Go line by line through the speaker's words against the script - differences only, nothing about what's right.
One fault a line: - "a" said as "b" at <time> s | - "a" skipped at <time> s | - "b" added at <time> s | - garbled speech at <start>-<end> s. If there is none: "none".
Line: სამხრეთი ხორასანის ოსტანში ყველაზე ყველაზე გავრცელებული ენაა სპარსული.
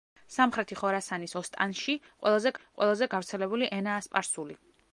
none